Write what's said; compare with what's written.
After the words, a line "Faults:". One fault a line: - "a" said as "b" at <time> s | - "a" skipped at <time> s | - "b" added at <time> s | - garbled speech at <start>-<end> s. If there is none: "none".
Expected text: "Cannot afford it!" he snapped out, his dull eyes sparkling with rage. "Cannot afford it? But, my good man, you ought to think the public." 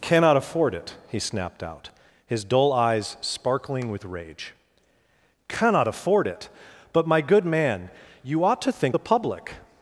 "Cannot afford it!" he snapped out, his dull eyes sparkling with rage. "Cannot afford it? But, my good man, you ought to think the public."
Faults:
none